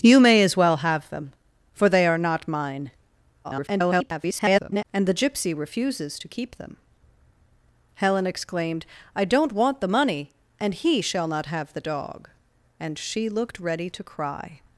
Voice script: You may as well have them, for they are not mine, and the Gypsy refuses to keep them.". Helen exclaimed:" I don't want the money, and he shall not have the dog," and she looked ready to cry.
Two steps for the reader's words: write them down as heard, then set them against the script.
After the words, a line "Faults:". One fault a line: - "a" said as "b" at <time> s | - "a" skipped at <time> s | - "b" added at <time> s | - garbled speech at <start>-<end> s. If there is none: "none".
You may as well have them, for they are not mine, [garbled] and the Gypsy refuses to keep them.". Helen exclaimed:" I don't want the money, and he shall not have the dog," and she looked ready to cry.
Faults:
- garbled speech at 3.4-4.8 s